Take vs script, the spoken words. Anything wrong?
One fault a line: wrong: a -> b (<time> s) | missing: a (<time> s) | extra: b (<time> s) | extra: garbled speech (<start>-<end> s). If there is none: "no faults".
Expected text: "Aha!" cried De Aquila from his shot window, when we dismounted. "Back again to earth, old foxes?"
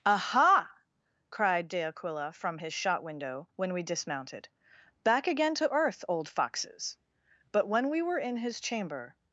extra: but when we were in his chamber (7.5 s)